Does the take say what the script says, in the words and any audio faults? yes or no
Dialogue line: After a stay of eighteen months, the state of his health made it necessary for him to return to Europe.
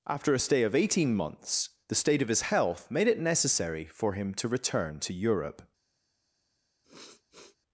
no